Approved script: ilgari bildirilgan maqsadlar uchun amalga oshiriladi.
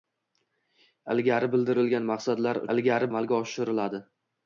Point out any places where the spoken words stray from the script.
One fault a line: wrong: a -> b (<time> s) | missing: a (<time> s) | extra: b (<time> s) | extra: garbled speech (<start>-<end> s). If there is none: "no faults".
wrong: uchun -> ilgari (2.7 s)